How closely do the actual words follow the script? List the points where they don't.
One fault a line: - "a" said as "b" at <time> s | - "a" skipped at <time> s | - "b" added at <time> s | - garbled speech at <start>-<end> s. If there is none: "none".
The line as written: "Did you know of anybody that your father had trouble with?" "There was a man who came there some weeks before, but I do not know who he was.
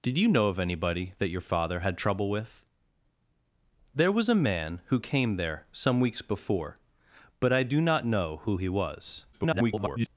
- garbled speech at 9.3-10.1 s